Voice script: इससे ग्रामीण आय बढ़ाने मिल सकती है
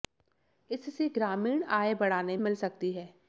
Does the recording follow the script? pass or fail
pass